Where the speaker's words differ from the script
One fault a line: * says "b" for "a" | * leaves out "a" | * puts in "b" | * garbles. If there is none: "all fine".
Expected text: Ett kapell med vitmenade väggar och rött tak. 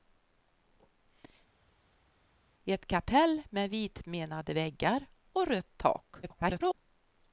* garbles